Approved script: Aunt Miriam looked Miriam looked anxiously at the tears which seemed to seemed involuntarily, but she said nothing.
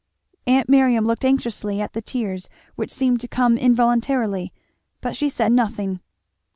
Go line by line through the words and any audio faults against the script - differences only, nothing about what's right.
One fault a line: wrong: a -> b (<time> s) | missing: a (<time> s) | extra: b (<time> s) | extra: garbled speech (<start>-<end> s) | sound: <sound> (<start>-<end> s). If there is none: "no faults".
missing: Miriam looked (1.3 s)
wrong: seemed -> come (3.3 s)